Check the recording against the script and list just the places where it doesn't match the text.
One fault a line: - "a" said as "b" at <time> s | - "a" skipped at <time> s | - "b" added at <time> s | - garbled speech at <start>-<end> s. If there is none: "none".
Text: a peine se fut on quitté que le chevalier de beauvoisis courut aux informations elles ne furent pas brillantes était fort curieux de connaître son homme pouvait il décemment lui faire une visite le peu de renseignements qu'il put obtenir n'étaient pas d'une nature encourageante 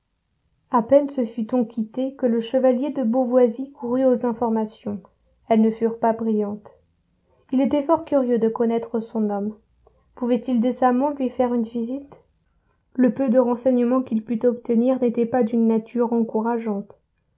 - "il" added at 7.5 s